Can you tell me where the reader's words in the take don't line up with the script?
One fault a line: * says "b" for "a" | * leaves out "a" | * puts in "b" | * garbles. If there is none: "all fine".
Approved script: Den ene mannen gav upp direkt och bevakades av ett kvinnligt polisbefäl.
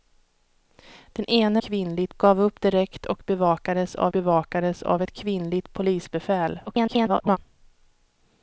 * says "kvinnligt" for "mannen"
* puts in "bevakades av"
* garbles